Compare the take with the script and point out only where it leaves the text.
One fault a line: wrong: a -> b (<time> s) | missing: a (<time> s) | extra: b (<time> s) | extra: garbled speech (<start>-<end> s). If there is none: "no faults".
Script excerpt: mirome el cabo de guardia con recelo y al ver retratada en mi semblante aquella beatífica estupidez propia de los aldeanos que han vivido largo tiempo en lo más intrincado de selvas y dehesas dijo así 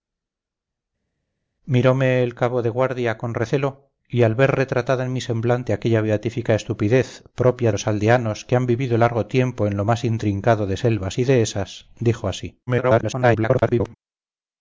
missing: de (7.7 s)
extra: garbled speech (12.7-13.9 s)